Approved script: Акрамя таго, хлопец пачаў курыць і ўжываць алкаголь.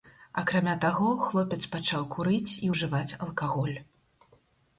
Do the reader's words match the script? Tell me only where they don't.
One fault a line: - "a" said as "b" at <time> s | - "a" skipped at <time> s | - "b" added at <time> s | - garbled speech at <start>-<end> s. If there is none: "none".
none